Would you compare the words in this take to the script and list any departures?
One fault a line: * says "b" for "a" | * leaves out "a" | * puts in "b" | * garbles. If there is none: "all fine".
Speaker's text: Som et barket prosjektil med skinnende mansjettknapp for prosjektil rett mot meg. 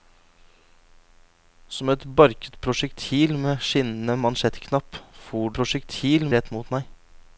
all fine